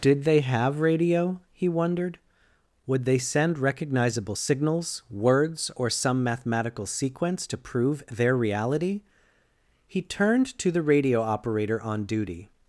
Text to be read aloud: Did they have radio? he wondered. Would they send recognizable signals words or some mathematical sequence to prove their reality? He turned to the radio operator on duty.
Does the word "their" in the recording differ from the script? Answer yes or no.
no